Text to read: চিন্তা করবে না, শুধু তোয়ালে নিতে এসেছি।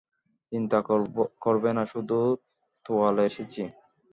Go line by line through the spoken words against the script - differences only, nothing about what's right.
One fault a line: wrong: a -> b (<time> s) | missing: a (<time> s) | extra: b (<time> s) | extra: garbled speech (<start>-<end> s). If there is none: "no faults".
missing: নিতে (3.2 s)